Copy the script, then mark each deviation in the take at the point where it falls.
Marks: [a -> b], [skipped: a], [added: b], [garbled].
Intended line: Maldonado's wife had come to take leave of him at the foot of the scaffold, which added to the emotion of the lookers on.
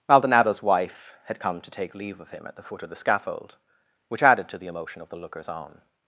Maldonado's wife had come to take leave of him at the foot of the scaffold, which added to the emotion of the lookers on.